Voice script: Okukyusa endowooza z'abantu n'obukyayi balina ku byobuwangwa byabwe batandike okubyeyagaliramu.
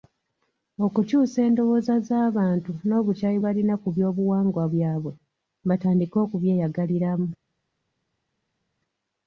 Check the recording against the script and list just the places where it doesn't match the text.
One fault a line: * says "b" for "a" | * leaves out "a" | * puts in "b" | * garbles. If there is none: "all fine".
all fine